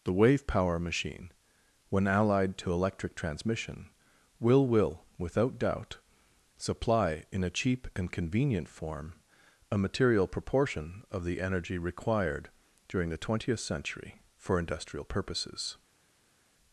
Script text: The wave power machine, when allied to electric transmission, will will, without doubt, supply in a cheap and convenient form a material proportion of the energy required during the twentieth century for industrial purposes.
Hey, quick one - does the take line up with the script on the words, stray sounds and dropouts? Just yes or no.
yes